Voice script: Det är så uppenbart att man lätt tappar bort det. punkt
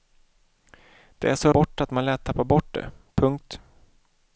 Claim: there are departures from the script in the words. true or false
true